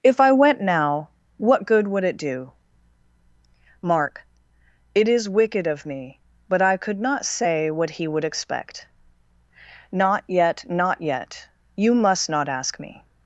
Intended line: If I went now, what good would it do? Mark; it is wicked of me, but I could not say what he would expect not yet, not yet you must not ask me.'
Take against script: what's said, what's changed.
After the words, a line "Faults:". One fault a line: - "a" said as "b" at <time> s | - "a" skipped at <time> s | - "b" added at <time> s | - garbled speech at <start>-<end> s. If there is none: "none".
If I went now, what good would it do? Mark; it is wicked of me, but I could not say what he would expect not yet, not yet you must not ask me.'
Faults:
none